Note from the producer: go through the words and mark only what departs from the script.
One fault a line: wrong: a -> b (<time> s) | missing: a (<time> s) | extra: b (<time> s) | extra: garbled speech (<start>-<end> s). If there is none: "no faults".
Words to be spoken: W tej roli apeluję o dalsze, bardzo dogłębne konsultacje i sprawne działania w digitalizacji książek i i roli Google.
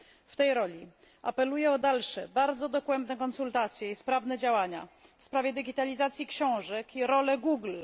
extra: sprawie (5.2 s)
missing: i (7.1 s)